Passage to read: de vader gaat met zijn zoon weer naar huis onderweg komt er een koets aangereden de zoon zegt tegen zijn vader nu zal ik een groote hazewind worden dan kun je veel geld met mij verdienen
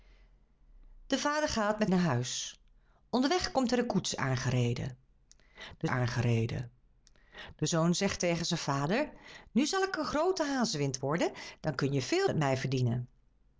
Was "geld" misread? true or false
true